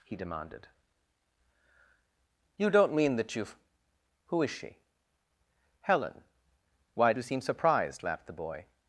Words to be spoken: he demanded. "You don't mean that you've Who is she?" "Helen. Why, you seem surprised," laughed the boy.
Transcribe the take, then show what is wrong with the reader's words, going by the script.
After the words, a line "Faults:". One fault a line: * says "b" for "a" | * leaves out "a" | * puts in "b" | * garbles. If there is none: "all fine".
he demanded. "You don't mean that you've Who is she?" "Helen. Why, you seem surprised," laughed the boy.
Faults:
all fine